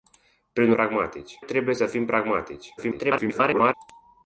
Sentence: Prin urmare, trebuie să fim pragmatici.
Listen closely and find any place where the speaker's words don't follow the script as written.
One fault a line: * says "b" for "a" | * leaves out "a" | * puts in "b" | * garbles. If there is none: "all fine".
* says "pragmatici" for "urmare"
* garbles